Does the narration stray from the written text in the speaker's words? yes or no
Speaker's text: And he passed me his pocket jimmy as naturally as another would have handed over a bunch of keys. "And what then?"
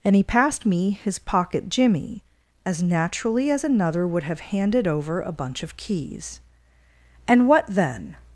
no